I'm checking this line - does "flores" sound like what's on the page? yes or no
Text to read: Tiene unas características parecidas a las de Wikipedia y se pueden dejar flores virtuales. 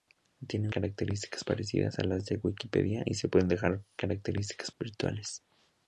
no